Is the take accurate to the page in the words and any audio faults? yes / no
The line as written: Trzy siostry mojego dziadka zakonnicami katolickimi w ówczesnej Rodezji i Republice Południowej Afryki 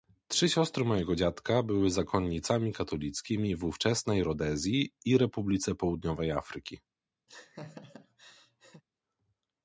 no